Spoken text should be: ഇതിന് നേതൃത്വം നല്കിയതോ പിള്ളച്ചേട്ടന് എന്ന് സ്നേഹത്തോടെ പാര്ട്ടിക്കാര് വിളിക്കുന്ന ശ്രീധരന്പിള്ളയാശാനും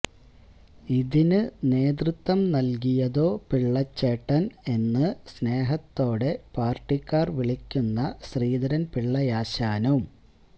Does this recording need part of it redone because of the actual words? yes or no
no